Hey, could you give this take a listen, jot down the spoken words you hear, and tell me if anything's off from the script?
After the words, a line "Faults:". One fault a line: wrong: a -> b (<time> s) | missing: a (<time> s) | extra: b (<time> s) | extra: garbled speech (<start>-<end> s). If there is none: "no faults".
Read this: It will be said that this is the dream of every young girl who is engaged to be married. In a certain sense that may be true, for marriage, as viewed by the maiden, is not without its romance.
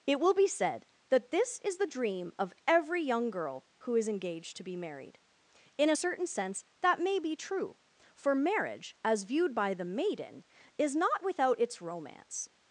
It will be said that this is the dream of every young girl who is engaged to be married. In a certain sense that may be true, for marriage, as viewed by the maiden, is not without its romance.
Faults:
no faults